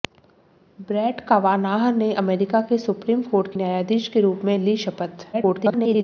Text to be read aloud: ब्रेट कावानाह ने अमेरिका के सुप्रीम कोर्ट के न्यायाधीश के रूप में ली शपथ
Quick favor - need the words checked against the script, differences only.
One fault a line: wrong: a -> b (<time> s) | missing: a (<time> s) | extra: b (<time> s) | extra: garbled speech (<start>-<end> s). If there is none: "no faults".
missing: के (3.5 s)
extra: garbled speech (5.3-6.0 s)